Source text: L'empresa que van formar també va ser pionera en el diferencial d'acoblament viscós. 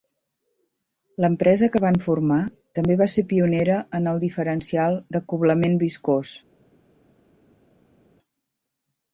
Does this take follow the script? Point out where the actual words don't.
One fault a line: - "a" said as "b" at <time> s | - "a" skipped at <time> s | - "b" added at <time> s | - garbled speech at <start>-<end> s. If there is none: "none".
none